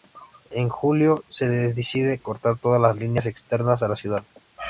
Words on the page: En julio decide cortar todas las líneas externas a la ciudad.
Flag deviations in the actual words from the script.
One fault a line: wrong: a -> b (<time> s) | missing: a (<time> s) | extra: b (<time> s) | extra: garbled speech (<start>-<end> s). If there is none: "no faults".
extra: se (1.3 s)